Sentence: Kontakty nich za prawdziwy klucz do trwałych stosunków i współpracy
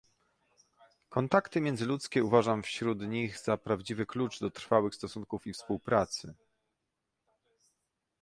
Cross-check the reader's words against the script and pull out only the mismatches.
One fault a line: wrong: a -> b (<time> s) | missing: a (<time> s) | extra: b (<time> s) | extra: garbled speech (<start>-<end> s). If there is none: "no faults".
extra: międzyludzkie uważam wśród (1.6 s)